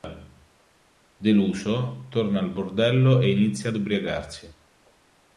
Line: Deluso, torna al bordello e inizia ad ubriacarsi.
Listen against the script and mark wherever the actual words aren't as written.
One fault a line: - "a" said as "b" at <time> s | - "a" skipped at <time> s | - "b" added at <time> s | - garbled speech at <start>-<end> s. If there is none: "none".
none